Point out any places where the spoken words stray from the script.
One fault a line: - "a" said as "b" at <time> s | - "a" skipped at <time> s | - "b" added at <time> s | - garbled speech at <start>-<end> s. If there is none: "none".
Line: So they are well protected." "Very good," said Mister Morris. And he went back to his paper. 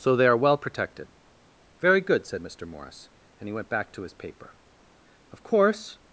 - "Of course" added at 5.3 s